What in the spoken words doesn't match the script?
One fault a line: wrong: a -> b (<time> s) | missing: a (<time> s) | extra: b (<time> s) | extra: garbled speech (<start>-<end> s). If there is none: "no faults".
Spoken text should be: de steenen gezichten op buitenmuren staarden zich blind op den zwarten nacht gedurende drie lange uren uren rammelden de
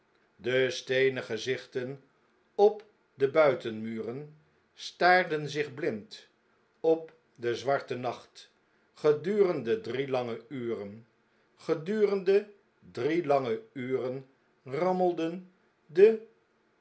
extra: de (3.1 s)
extra: gedurende drie lange (11.5 s)